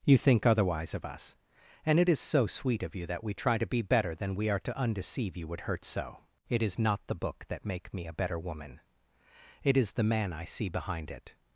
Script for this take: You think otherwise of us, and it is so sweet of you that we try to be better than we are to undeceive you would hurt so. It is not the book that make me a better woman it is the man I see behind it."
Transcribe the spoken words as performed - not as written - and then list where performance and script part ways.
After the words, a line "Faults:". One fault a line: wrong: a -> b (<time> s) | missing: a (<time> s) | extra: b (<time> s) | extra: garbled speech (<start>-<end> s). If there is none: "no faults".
You think otherwise of us, and it is so sweet of you that we try to be better than we are to undeceive you would hurt so. It is not the book that make me a better woman it is the man I see behind it."
Faults:
no faults